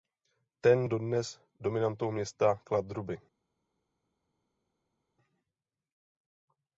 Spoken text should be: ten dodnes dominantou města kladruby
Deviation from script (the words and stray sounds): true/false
false